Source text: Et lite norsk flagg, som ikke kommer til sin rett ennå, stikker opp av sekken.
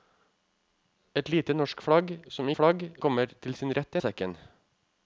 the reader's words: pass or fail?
fail